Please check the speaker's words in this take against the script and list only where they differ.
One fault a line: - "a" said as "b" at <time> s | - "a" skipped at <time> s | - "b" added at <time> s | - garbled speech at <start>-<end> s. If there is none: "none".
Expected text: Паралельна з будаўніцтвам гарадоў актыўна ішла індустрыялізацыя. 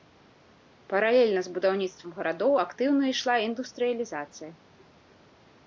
none